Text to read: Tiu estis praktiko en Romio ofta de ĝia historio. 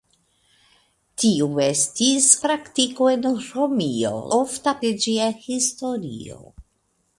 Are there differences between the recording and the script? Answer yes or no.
no